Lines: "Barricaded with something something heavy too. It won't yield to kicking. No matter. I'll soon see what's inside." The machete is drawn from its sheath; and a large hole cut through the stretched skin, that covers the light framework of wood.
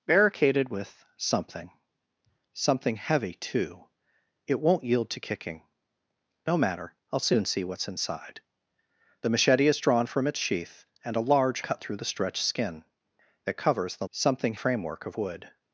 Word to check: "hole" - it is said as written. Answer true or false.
false